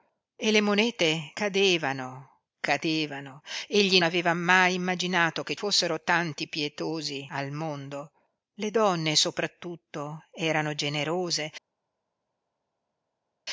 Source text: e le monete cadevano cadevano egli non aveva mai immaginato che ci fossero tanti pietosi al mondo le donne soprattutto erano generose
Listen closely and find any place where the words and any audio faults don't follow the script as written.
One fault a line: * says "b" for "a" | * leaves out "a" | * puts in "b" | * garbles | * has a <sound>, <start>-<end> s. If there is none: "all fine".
* leaves out "non"
* leaves out "ci"